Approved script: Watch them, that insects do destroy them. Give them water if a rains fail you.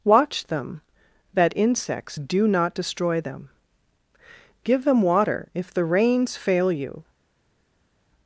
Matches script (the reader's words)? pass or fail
fail